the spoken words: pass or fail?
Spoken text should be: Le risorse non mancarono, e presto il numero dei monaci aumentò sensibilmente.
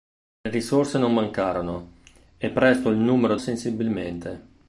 fail